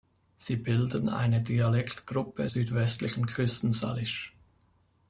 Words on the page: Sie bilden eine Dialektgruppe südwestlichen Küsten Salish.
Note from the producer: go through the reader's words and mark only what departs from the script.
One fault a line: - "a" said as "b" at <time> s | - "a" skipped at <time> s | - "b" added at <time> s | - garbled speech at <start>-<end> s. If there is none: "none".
none